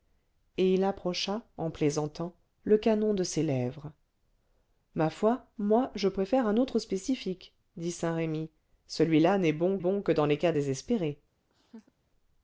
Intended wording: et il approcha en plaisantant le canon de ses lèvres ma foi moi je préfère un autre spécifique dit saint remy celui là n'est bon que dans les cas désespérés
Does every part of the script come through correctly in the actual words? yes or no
no